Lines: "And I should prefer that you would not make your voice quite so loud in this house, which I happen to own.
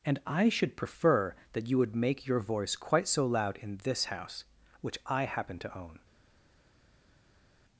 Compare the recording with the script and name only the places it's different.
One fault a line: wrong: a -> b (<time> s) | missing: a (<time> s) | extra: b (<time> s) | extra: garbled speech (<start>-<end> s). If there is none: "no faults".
missing: not (1.9 s)